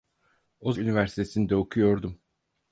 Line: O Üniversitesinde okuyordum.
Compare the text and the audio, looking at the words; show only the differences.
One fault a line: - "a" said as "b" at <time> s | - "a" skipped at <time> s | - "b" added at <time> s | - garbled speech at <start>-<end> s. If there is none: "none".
none